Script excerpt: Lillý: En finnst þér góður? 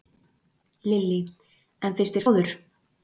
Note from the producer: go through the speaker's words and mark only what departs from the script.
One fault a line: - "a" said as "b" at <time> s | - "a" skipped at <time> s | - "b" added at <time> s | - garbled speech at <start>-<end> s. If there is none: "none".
none